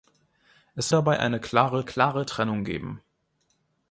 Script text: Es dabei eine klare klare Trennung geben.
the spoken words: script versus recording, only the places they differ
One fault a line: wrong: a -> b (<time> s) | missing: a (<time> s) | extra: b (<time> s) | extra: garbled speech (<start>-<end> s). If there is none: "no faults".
no faults